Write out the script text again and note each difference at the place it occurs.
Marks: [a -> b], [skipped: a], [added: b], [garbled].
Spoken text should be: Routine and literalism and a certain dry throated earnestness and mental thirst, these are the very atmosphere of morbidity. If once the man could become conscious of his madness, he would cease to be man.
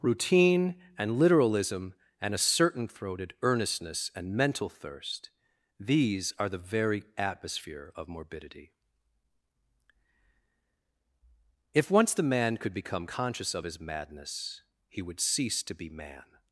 Routine and literalism and a certain [skipped: dry] throated earnestness and mental thirst, these are the very atmosphere of morbidity. If once the man could become conscious of his madness, he would cease to be man.